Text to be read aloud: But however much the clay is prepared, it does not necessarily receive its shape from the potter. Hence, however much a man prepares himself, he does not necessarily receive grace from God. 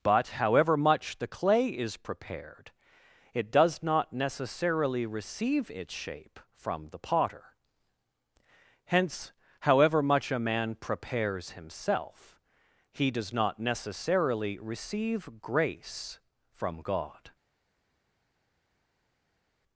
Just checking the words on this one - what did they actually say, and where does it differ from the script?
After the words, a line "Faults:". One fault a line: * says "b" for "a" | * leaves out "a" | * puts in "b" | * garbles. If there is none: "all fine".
But however much the clay is prepared, it does not necessarily receive its shape from the potter. Hence, however much a man prepares himself, he does not necessarily receive grace from God.
Faults:
all fine